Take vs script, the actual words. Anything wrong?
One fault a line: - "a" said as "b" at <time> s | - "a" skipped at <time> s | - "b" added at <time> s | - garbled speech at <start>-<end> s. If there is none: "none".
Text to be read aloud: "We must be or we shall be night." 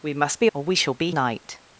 none